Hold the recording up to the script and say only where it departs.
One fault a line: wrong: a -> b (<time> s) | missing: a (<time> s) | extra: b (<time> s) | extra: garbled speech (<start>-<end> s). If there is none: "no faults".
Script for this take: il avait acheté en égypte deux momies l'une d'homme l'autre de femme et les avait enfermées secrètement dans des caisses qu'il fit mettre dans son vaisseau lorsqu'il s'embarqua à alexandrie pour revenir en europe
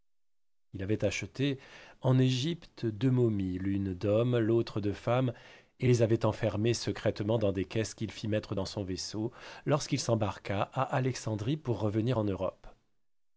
no faults